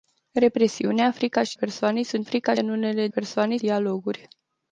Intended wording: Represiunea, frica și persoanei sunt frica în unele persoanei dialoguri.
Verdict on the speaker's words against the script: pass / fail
pass